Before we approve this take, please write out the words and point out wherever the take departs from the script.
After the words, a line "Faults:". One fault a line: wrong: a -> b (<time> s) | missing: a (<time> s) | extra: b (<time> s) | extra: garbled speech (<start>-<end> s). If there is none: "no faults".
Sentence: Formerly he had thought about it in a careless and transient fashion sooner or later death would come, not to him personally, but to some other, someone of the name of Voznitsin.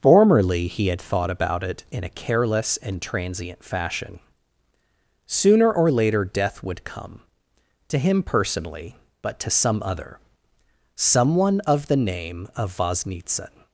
Formerly he had thought about it in a careless and transient fashion sooner or later death would come, to him personally, but to some other, someone of the name of Voznitsin.
Faults:
missing: not (7.2 s)